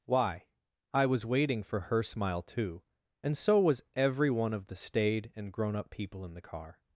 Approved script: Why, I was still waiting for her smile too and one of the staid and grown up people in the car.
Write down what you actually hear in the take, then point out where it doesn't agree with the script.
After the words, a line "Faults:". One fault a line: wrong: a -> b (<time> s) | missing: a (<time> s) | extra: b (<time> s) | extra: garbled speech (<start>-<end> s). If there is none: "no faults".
Why, I was waiting for her smile too and so was every one of the staid and grown up people in the car.
Faults:
missing: still (1.3 s)
extra: so was every (3.4 s)